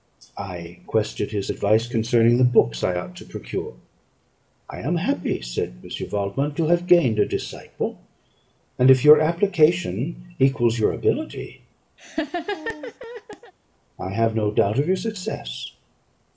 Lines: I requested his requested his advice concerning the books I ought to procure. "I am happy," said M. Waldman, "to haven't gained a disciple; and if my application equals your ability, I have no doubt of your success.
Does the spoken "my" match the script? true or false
false